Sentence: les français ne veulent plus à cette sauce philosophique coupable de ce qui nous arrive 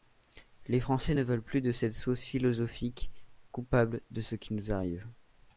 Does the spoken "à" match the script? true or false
false